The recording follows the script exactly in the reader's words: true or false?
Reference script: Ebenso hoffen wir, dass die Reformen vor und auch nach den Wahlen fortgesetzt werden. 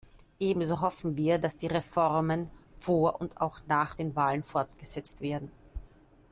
true